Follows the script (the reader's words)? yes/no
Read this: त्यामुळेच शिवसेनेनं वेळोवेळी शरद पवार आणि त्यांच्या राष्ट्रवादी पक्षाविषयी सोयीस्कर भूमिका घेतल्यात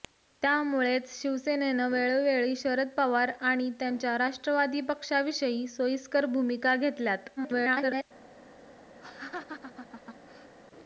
no